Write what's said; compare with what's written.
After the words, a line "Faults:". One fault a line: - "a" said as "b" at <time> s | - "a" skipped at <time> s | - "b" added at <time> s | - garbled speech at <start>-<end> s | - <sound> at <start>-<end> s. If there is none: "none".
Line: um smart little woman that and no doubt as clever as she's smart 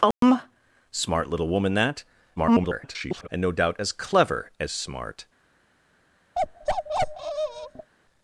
um smart little woman that [garbled] and no doubt as clever as smart
Faults:
- dropout at 0.1-0.2 s
- garbled speech at 2.4-3.3 s
- "she's" skipped at 4.7 s
- bark at 6.4-7.9 s